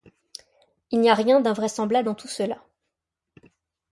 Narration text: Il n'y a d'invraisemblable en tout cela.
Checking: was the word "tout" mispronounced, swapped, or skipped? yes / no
no